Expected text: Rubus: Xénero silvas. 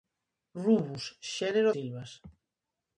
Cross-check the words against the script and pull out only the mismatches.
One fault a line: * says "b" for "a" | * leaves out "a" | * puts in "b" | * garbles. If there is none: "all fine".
all fine